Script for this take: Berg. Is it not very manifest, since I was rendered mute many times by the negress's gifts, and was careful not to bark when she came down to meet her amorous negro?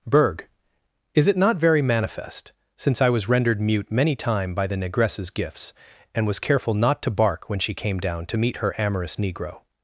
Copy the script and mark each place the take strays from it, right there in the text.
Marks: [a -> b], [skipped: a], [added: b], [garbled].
Berg. Is it not very manifest, since I was rendered mute many [times -> time] by the negress's gifts, and was careful not to bark when she came down to meet her amorous negro?